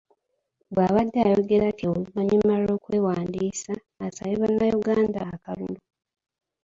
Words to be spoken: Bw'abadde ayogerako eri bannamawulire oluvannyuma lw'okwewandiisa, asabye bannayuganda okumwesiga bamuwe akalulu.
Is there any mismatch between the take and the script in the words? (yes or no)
yes